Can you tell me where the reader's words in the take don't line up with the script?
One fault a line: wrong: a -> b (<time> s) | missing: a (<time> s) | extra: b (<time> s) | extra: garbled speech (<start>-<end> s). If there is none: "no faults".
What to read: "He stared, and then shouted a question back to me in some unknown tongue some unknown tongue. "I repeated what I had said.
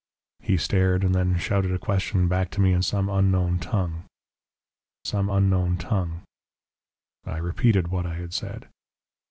no faults